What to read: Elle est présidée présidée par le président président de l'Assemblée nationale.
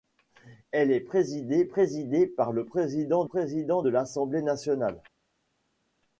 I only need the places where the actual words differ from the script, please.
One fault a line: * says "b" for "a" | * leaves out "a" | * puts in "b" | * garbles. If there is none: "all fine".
all fine